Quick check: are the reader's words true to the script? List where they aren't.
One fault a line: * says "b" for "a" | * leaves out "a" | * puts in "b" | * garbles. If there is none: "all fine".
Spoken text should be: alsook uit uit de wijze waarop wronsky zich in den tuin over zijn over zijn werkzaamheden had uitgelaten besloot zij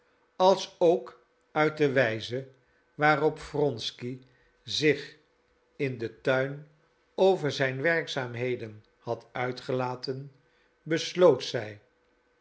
* leaves out "uit"
* leaves out "over zijn"